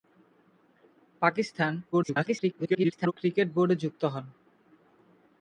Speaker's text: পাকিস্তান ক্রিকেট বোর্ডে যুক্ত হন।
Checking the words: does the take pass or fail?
fail